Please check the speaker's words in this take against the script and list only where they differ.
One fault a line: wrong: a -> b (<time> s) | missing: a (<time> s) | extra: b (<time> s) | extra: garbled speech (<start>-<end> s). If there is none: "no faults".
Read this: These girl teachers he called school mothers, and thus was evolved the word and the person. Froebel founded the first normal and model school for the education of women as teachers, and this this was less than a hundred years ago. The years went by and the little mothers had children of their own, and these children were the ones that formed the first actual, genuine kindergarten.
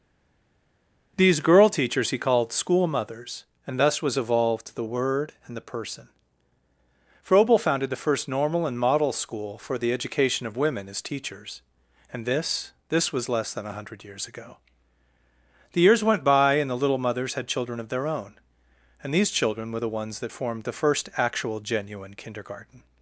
no faults